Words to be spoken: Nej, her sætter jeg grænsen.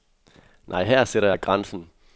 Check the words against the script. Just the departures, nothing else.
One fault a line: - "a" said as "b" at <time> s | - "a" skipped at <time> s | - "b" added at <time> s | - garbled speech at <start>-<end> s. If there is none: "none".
none